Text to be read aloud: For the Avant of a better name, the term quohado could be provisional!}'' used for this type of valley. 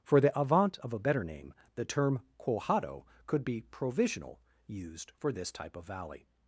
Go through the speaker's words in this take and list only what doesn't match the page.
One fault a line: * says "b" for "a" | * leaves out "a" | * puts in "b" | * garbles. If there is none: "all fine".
all fine